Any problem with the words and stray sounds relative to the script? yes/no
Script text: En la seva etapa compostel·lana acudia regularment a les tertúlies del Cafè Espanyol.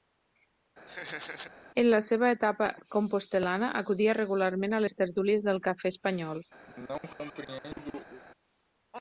yes